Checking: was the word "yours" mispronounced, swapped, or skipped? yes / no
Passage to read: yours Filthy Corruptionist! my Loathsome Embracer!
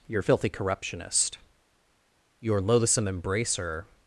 yes